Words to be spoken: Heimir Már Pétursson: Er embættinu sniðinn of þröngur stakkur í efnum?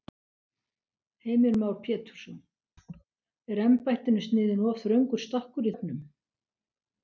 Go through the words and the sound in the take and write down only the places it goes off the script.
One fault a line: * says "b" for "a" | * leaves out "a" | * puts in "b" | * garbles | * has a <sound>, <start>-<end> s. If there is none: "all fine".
* has a laugh, 2.8-3.1 s